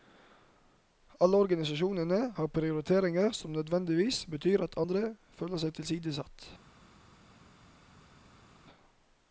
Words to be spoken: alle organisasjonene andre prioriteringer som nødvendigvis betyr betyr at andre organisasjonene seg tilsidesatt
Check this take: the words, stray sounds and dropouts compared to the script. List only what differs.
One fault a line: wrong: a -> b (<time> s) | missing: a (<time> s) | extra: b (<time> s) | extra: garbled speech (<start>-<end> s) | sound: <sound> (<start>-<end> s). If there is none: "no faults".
wrong: andre -> har (2.4 s)
missing: betyr (4.6 s)
wrong: organisasjonene -> føler (5.4 s)